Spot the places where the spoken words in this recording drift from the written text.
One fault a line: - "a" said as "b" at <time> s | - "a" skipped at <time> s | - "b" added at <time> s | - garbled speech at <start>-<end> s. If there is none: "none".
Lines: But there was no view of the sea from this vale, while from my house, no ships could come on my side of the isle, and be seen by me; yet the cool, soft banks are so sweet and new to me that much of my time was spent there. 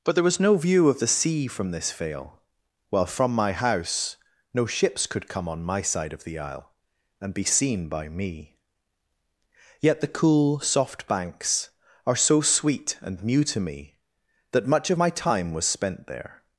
none